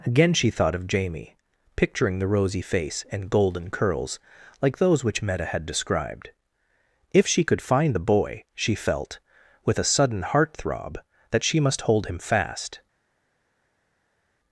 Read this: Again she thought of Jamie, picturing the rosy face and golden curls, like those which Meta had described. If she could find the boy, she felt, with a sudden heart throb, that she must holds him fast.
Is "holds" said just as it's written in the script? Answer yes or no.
no